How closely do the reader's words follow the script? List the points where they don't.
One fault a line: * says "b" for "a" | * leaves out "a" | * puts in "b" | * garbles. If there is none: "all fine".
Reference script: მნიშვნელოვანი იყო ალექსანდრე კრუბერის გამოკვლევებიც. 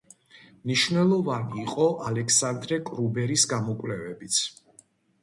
all fine